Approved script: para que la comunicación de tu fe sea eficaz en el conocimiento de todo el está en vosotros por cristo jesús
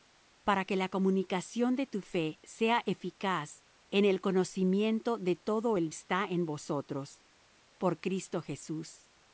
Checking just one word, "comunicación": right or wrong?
right